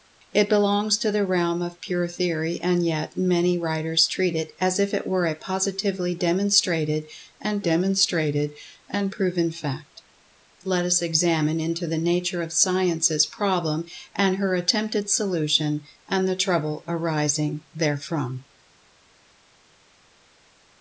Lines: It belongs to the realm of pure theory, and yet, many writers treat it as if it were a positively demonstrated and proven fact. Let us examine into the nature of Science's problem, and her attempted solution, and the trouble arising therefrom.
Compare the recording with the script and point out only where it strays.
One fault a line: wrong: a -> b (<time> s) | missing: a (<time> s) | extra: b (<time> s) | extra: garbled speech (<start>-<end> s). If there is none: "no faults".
extra: demonstrated and (7.6 s)